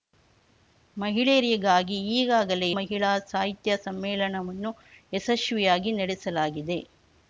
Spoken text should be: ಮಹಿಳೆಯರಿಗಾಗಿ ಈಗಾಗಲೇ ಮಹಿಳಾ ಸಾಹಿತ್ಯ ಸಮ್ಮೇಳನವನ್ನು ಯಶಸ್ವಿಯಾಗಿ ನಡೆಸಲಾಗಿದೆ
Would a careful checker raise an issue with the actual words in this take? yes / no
no